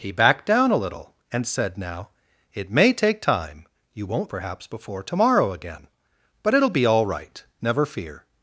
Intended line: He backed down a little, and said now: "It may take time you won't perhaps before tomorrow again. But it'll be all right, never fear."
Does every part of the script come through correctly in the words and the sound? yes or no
yes